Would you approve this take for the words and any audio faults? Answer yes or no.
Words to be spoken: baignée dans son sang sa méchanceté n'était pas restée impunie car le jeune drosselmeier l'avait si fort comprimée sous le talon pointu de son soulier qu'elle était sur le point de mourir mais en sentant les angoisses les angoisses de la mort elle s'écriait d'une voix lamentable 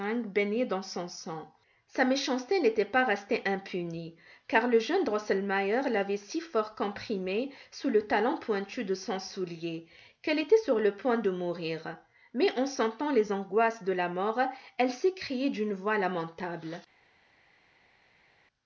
no